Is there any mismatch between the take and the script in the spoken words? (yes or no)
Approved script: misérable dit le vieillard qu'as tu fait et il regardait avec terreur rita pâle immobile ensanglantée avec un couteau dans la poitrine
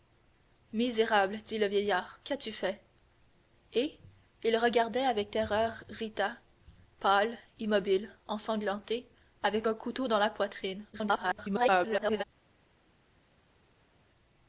yes